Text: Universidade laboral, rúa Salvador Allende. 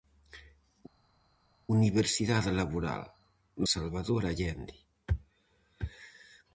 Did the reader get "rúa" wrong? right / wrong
wrong